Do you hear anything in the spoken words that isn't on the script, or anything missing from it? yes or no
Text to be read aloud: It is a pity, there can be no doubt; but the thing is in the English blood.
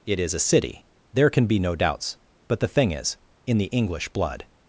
yes